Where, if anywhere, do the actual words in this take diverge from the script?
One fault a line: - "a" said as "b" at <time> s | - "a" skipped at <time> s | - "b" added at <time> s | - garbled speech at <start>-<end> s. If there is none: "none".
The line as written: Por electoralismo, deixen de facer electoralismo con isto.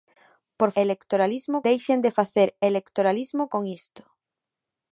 none